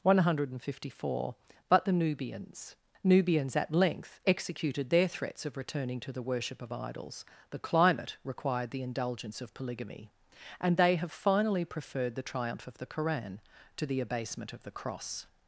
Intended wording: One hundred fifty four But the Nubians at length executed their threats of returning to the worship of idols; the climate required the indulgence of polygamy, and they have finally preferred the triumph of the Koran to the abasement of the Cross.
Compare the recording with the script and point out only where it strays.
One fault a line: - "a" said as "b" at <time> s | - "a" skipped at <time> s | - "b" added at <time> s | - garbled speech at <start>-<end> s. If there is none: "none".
- "Nubians" added at 3.0 s